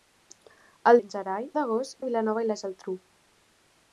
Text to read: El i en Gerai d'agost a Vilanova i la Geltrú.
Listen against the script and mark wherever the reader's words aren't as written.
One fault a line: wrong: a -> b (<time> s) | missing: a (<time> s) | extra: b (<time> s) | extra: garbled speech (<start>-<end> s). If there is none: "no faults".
no faults